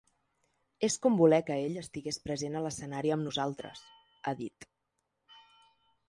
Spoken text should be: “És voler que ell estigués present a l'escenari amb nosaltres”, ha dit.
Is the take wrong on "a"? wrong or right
right